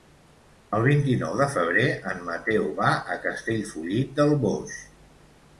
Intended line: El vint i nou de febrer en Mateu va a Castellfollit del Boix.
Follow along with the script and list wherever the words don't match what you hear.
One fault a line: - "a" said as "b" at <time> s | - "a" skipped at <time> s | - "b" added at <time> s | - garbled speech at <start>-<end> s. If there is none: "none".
none